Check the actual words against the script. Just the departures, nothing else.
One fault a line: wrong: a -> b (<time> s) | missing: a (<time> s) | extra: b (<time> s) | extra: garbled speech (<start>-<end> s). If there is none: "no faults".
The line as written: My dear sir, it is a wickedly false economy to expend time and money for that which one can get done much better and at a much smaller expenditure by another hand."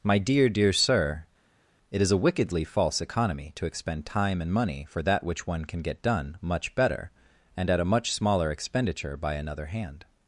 extra: dear (0.5 s)